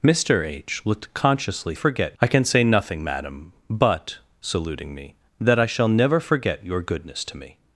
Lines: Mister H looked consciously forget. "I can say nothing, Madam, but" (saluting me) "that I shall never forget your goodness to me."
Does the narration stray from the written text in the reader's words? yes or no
no